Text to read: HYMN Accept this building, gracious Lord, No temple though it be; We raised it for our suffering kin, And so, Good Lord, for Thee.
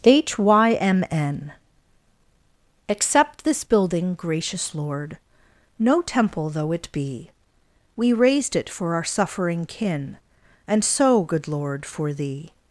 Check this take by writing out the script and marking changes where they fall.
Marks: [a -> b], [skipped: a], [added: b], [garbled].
HYMN Accept this building, gracious Lord, No temple though it be; We raised it for our suffering kin, And so, Good Lord, for Thee.